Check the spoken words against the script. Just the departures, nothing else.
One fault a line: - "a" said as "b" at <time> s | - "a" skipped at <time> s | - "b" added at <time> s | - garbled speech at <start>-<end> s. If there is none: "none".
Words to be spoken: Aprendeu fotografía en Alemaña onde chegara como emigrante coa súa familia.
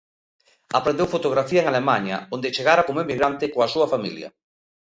none